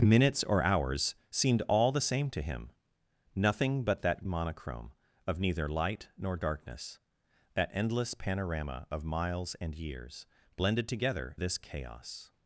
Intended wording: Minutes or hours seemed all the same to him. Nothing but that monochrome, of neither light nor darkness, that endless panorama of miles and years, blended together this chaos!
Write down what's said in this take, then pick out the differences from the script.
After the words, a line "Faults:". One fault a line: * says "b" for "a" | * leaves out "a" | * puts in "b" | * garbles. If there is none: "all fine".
Minutes or hours seemed all the same to him. Nothing but that monochrome, of neither light nor darkness, that endless panorama of miles and years, blended together this chaos!
Faults:
all fine